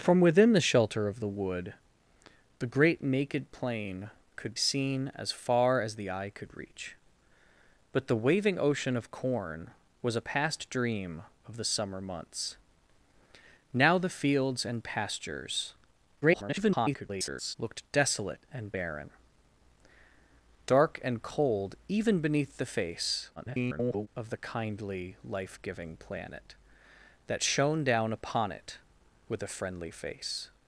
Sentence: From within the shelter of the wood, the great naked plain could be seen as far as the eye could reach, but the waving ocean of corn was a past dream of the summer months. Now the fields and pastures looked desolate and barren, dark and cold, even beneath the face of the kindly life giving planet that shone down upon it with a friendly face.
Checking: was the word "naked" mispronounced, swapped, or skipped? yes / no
no